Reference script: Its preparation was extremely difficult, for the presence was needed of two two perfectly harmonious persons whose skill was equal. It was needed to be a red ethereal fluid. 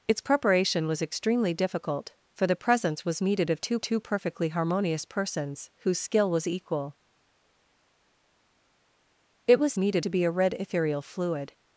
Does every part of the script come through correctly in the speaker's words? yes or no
yes